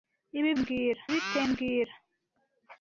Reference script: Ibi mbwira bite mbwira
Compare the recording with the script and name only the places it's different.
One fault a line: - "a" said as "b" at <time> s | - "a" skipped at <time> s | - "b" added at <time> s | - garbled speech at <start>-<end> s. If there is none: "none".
none